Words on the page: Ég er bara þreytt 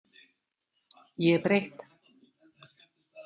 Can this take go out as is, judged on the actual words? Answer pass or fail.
fail